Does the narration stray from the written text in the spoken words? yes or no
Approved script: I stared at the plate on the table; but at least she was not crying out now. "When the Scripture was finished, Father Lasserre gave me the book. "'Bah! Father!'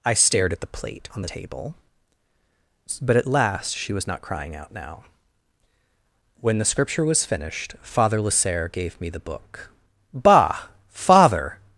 yes